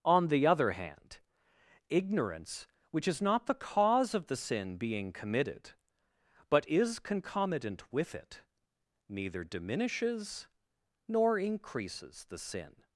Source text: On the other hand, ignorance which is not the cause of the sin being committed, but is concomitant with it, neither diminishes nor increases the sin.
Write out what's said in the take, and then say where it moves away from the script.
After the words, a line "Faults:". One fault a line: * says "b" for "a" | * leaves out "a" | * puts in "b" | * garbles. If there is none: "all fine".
On the other hand, ignorance which is not the cause of the sin being committed, but is concomitant with it, neither diminishes nor increases the sin.
Faults:
all fine